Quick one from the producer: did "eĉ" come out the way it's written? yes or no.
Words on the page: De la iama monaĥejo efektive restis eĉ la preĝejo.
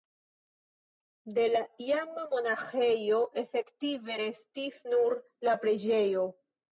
no